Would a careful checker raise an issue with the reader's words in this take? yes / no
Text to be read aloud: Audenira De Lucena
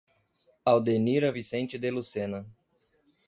yes